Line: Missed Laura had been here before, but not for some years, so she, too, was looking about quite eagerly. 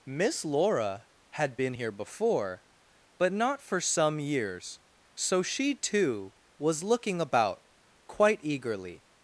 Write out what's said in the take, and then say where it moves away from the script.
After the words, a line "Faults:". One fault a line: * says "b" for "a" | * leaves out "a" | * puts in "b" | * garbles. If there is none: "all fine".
Miss Laura had been here before, but not for some years, so she, too, was looking about quite eagerly.
Faults:
* says "Miss" for "Missed"